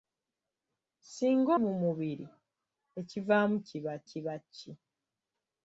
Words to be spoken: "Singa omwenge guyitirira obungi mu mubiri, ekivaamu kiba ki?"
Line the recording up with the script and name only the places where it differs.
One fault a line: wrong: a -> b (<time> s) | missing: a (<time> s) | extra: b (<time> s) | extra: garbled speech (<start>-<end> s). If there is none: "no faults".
missing: omwenge guyitirira obungi (1.5 s)
extra: kiba (4.1 s)